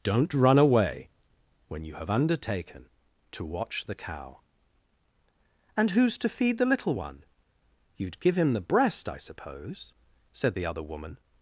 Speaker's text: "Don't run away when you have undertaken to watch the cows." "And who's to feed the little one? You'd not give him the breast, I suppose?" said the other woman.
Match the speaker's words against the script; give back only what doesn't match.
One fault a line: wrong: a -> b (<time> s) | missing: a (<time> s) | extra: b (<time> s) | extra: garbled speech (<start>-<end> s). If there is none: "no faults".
wrong: cows -> cow (4.0 s)
missing: not (8.2 s)